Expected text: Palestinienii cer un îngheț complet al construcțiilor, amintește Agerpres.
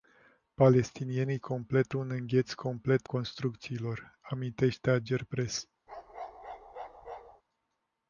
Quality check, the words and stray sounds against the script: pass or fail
fail